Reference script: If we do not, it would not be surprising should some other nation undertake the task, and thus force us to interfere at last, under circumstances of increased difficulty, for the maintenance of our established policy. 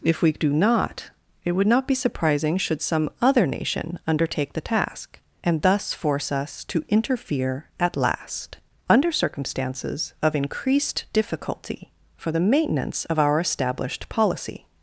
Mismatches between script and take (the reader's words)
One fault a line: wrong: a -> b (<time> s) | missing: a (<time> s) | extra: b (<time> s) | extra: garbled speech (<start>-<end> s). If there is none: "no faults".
no faults